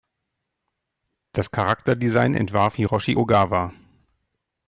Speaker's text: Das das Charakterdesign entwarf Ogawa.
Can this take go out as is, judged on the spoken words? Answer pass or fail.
fail